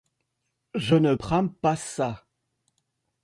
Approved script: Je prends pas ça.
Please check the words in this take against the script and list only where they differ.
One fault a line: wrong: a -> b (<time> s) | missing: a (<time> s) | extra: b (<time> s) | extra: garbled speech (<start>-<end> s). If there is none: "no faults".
extra: ne (0.9 s)